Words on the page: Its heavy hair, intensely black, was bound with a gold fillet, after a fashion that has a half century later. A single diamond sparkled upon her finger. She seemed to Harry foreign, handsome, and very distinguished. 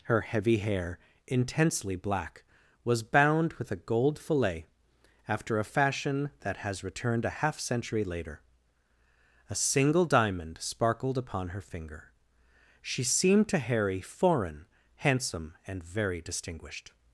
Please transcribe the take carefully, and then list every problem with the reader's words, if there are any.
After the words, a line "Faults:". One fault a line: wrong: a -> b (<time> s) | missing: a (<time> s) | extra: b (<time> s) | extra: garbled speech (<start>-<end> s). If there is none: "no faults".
Her heavy hair, intensely black, was bound with a gold fillet, after a fashion that has returned a half century later. A single diamond sparkled upon her finger. She seemed to Harry foreign, handsome, and very distinguished.
Faults:
wrong: Its -> Her (0.0 s)
extra: returned (6.8 s)